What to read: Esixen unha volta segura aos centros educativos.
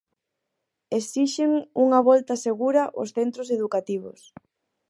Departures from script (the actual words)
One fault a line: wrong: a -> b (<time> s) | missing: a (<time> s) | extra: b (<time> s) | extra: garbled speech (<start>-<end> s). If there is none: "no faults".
no faults